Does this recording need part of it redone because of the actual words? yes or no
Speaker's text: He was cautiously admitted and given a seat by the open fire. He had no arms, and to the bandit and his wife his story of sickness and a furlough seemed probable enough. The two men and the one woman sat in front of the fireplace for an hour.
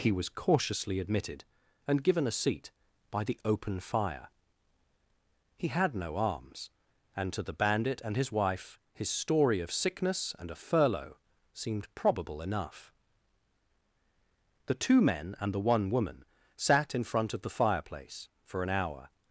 no